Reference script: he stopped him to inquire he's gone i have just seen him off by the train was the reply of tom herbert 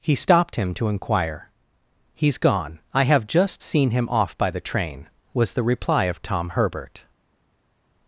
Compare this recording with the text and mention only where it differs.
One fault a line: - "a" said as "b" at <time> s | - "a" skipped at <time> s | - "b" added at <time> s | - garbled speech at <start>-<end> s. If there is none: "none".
none